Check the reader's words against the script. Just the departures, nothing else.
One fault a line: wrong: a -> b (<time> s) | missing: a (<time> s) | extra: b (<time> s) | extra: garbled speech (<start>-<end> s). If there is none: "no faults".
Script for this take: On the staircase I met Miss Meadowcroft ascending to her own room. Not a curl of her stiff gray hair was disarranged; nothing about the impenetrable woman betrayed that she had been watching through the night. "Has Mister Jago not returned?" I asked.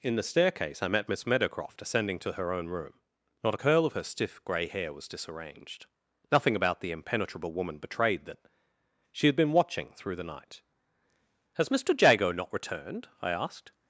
wrong: On -> In (0.0 s)